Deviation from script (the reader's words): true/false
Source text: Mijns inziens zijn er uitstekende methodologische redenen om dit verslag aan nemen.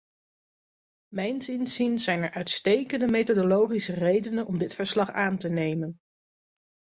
true